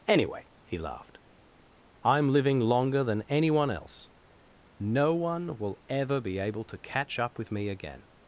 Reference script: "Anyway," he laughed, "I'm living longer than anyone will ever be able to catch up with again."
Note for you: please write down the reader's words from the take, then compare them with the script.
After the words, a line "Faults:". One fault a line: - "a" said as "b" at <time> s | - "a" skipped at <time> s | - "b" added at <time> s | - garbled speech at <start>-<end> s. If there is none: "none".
"Anyway," he laughed, "I'm living longer than anyone else. No one will ever be able to catch up with me again."
Faults:
- "else No one" added at 3.7 s
- "me" added at 7.5 s